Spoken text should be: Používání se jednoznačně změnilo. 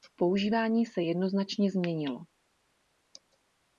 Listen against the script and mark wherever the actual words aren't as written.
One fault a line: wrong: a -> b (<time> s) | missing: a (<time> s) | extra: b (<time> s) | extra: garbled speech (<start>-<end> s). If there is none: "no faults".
no faults